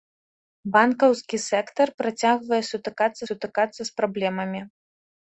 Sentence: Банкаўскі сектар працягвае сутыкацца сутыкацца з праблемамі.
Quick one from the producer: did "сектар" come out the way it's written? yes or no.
yes